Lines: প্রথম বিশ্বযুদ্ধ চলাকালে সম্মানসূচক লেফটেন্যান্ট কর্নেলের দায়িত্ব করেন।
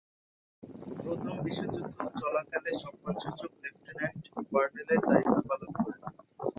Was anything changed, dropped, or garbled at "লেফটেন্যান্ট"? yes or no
no